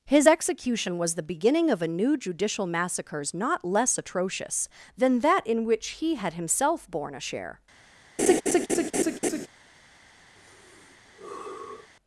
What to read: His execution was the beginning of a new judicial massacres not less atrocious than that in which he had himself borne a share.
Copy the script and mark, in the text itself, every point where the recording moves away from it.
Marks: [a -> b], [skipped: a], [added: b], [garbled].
His execution was the beginning of a new judicial massacres not less atrocious than that in which he had himself borne a share.